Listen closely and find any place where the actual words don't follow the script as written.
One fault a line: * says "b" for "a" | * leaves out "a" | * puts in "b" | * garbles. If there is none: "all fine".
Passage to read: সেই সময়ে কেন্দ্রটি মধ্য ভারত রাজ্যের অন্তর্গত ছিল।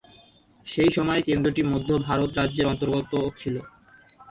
all fine